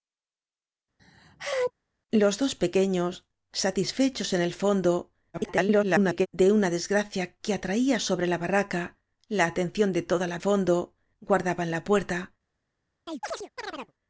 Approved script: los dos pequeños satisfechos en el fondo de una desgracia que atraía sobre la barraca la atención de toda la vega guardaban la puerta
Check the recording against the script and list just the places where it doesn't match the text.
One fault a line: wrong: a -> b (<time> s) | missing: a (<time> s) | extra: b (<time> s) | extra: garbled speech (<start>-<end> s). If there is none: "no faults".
extra: garbled speech (5.3-6.3 s)
wrong: vega -> fondo (10.4 s)